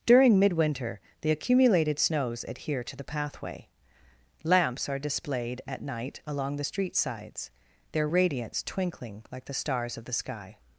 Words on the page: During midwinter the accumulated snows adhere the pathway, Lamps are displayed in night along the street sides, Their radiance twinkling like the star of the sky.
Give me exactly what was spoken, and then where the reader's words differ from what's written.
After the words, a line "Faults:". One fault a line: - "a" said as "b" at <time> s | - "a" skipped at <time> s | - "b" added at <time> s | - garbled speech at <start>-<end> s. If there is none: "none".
During midwinter the accumulated snows adhere to the pathway, Lamps are displayed at night along the street sides, Their radiance twinkling like the stars of the sky.
Faults:
- "to" added at 2.8 s
- "in" said as "at" at 5.7 s
- "star" said as "stars" at 9.5 s